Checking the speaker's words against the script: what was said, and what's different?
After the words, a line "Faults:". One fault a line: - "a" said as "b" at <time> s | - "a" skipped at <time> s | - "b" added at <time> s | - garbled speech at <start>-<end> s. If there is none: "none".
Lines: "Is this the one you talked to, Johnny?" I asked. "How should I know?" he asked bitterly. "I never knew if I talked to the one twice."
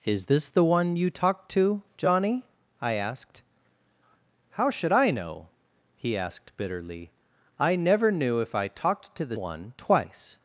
"Is this the one you talked to, Johnny?" I asked. "How should I know?" he asked bitterly. "I never knew if I talked to the one twice."
Faults:
none